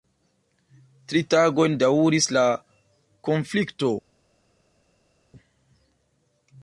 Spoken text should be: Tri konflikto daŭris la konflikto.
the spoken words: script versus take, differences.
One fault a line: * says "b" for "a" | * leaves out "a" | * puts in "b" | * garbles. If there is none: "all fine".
* says "tagojn" for "konflikto"